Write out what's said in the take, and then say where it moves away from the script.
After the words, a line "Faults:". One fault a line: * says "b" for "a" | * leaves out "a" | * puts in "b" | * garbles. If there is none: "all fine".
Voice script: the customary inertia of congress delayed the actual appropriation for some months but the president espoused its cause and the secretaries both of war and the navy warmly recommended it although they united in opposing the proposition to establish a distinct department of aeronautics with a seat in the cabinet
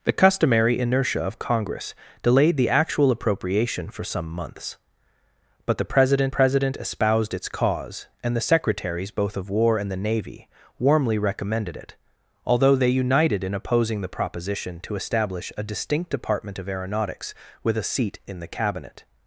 the customary inertia of congress delayed the actual appropriation for some months but the president president espoused its cause and the secretaries both of war and the navy warmly recommended it although they united in opposing the proposition to establish a distinct department of aeronautics with a seat in the cabinet
Faults:
* puts in "president"